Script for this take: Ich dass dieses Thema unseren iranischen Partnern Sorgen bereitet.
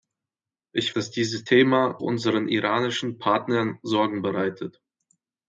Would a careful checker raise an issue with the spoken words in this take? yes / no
no